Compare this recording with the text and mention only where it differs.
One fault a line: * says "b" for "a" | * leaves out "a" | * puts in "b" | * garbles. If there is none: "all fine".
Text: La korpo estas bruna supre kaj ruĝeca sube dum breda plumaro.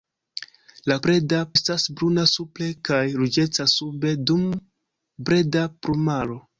* says "breda" for "korpo"